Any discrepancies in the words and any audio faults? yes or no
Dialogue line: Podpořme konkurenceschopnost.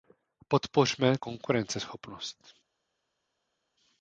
no